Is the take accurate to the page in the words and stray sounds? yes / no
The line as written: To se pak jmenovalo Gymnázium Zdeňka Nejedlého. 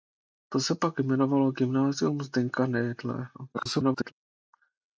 no